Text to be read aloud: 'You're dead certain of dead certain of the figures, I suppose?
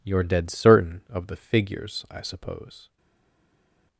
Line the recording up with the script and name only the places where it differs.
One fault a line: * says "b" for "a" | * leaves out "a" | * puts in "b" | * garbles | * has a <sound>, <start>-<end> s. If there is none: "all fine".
* leaves out "dead certain of"